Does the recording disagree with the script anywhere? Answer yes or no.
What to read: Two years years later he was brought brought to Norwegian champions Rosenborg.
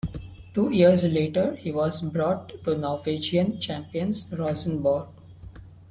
yes